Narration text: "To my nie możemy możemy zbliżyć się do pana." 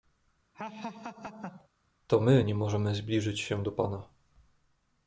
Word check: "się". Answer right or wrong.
right